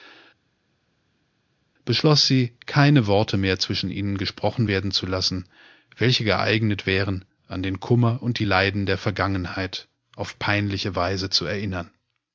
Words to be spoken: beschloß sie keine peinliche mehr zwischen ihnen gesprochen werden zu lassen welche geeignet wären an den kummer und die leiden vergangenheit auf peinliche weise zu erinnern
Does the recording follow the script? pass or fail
fail